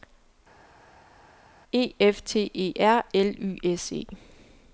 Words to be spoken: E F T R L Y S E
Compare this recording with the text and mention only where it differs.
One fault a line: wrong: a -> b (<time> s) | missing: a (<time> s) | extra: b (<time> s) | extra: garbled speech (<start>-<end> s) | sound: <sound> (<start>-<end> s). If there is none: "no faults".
extra: E (2.5 s)